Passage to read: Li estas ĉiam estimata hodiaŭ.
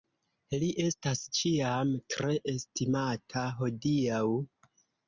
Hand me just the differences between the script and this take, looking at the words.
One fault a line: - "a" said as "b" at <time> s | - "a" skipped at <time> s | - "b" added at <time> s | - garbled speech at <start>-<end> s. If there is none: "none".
- "tre" added at 2.1 s